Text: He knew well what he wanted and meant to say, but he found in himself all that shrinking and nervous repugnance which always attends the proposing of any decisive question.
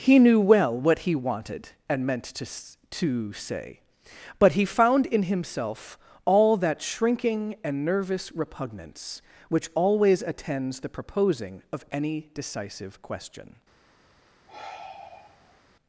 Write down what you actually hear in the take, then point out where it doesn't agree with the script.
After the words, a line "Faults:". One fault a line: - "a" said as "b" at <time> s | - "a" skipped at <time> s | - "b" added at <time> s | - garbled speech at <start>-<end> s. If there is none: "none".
He knew well what he wanted and meant to to say, but he found in himself all that shrinking and nervous repugnance which always attends the proposing of any decisive question.
Faults:
- "to" added at 2.5 s